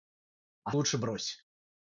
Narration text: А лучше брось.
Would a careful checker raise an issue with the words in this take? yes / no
no